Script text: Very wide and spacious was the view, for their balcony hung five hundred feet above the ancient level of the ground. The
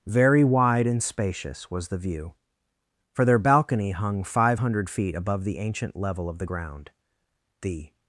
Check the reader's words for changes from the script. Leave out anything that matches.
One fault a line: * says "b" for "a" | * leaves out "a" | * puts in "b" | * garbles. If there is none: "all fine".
all fine